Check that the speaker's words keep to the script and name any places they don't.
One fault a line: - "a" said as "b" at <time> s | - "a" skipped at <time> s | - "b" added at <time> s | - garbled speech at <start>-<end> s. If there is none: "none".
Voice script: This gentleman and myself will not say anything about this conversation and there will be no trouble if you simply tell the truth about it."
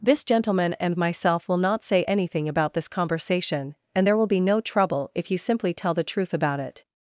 none